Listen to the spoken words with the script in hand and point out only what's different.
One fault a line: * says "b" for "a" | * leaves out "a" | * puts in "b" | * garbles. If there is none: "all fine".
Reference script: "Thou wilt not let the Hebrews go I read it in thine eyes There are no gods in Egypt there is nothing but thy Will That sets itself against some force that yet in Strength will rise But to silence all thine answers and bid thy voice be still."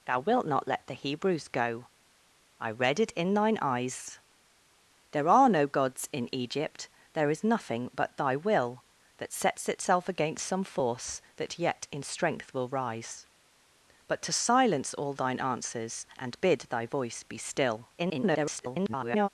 * garbles